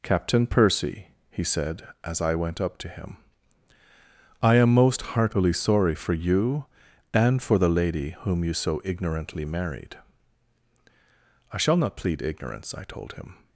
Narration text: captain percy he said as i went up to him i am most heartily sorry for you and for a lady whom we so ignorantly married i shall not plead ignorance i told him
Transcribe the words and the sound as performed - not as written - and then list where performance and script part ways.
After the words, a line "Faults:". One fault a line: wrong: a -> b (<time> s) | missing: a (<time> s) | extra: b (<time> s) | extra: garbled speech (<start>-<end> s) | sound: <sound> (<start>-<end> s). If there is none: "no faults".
captain percy he said as i went up to him i am most heartily sorry for you and for the lady whom you so ignorantly married i shall not plead ignorance i told him
Faults:
wrong: a -> the (7.6 s)
wrong: we -> you (8.4 s)